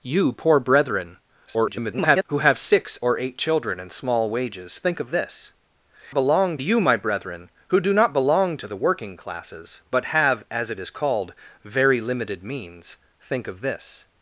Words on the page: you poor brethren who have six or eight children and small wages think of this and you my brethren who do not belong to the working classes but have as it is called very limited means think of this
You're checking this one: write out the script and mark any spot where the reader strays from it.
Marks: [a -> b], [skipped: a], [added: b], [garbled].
you poor brethren [garbled] who have six or eight children and small wages think of this [and -> belong] you my brethren who do not belong to the working classes but have as it is called very limited means think of this